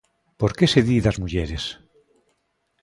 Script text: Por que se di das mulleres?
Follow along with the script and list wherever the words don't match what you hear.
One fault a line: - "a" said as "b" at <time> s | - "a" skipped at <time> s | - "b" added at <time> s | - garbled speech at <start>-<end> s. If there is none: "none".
none